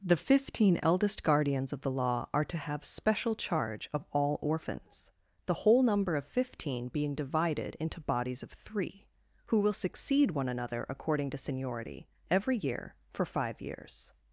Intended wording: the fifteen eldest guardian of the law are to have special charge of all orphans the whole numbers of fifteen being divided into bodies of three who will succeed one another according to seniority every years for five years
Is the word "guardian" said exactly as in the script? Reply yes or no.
no